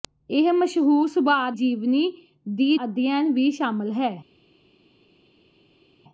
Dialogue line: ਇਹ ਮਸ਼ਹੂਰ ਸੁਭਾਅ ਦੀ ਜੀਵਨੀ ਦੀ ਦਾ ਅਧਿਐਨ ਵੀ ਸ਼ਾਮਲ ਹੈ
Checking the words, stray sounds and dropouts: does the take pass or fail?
fail